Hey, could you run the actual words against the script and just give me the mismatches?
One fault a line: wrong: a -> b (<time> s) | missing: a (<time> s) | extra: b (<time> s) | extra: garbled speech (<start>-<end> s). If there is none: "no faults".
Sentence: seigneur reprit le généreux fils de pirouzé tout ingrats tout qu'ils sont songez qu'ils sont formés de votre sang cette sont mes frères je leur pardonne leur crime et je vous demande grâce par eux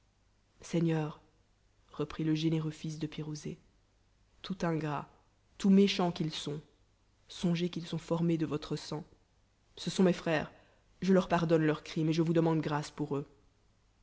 extra: méchants (5.7 s)
wrong: cette -> ce (9.8 s)
wrong: par -> pour (12.9 s)